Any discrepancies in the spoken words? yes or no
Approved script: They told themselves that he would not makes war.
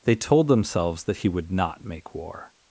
yes